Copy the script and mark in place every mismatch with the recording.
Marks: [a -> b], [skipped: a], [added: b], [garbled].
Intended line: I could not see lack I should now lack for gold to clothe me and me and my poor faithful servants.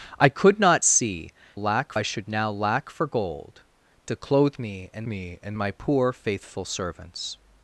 I could not see lack I should now lack for gold to clothe me and me and my poor faithful servants.